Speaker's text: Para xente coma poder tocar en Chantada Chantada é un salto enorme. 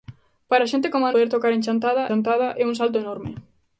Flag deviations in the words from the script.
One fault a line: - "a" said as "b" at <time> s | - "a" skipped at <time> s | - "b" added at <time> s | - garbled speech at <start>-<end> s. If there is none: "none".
none